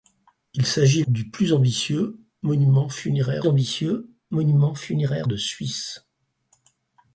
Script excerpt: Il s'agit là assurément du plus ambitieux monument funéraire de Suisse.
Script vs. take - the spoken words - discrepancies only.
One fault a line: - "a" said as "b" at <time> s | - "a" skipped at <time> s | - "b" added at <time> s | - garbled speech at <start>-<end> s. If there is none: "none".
- "là assurément du plus" said as "du plus ambitieux monument funéraire" at 1.1 s